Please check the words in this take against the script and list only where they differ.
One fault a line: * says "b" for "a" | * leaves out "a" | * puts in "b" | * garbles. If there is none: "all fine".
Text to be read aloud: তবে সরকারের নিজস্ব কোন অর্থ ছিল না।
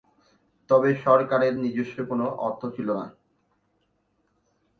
all fine